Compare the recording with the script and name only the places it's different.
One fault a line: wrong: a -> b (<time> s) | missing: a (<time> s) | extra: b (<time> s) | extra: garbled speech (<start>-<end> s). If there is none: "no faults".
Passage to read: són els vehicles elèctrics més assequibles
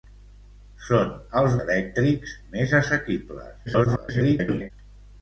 missing: vehicles (1.6 s)
extra: garbled speech (3.7-4.7 s)